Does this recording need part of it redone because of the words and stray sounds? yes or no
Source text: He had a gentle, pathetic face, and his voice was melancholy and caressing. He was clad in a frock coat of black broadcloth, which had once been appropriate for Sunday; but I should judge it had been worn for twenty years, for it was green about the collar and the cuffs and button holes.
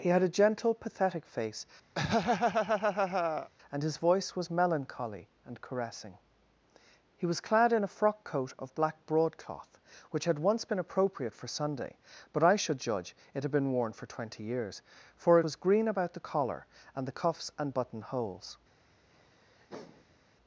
yes